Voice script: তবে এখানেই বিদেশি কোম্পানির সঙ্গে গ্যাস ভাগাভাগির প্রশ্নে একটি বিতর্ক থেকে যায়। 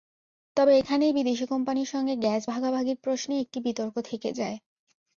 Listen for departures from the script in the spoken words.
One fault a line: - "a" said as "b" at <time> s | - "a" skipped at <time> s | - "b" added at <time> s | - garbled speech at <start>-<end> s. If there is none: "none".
none